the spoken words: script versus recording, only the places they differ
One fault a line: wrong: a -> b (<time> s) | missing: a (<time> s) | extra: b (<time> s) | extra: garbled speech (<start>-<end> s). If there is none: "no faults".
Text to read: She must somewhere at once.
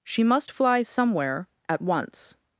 extra: fly (0.5 s)